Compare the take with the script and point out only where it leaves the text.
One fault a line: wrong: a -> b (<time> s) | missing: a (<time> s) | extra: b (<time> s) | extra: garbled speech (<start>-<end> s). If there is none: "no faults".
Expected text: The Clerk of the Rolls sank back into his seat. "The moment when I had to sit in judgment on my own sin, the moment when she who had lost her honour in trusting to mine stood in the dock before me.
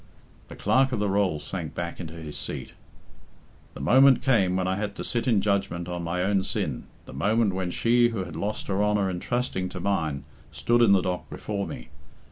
extra: came (4.2 s)